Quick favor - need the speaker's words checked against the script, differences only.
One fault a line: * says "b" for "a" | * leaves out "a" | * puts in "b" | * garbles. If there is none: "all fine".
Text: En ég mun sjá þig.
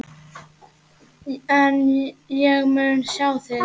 all fine